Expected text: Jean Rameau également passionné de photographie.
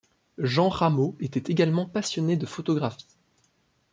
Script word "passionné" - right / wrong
right